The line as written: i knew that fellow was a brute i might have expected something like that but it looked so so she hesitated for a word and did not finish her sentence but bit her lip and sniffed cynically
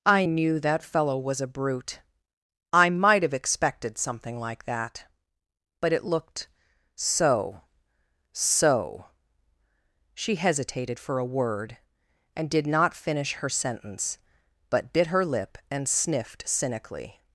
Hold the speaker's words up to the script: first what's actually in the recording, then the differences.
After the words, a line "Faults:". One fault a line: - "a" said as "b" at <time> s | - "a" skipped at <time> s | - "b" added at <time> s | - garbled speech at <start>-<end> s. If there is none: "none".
i knew that fellow was a brute i might have expected something like that but it looked so so she hesitated for a word and did not finish her sentence but bit her lip and sniffed cynically
Faults:
none